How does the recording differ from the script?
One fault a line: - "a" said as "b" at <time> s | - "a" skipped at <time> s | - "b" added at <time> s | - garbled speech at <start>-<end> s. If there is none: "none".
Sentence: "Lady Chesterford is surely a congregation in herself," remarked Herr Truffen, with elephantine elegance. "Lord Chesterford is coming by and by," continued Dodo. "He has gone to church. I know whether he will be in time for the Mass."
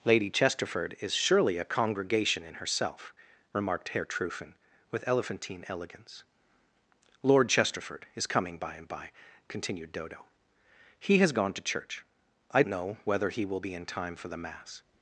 none